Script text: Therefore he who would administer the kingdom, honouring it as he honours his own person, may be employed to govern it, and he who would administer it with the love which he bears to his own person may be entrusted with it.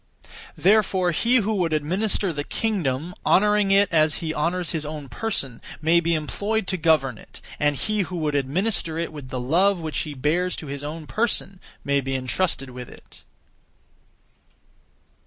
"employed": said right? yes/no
yes